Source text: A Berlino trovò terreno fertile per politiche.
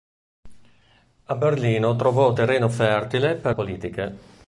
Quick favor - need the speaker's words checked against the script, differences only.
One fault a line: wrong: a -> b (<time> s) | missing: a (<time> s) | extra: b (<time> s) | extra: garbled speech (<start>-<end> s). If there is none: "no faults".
no faults